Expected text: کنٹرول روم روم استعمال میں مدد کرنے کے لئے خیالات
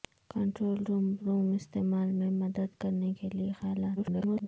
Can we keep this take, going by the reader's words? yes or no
no